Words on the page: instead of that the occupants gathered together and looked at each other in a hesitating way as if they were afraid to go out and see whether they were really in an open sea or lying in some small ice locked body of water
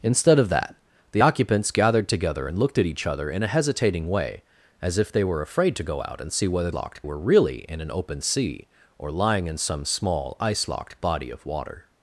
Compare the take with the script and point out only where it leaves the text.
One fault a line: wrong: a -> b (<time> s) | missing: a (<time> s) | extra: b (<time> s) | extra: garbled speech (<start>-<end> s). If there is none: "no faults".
wrong: they -> locked (6.7 s)